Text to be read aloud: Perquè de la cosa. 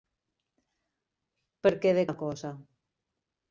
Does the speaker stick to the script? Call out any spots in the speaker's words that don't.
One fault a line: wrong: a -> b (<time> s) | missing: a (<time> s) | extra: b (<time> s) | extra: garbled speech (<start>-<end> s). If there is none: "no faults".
no faults